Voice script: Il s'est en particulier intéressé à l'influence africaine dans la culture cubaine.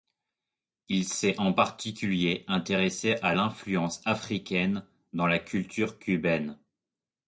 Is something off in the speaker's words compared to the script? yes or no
no